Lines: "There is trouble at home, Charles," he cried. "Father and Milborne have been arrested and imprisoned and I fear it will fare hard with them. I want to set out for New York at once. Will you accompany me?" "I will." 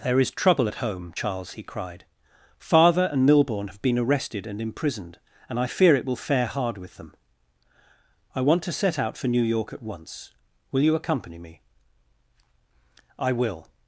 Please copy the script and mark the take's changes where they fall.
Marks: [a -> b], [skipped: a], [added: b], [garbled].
"There is trouble at home, Charles," he cried. "Father and Milborne have been arrested and imprisoned and I fear it will fare hard with them. I want to set out for New York at once. Will you accompany me?" "I will."